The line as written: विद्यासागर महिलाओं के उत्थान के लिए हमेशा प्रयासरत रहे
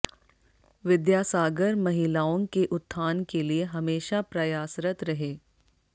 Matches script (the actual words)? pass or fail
pass